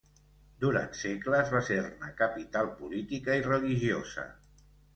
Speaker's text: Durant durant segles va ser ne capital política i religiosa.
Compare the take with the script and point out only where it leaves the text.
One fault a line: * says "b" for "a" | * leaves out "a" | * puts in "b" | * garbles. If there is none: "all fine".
* leaves out "durant"